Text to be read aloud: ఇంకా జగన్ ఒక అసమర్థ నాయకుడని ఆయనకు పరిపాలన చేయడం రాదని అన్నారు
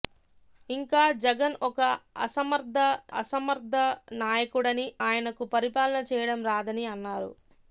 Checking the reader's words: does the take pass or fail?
fail